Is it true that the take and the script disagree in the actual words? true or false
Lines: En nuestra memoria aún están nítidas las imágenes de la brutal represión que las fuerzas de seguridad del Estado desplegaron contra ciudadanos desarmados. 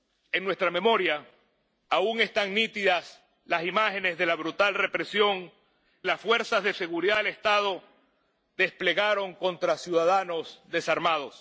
true